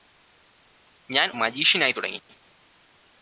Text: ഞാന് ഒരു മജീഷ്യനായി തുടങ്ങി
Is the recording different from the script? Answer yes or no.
yes